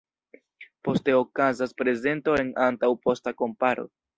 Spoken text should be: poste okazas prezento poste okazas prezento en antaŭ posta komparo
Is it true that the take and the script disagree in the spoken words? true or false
true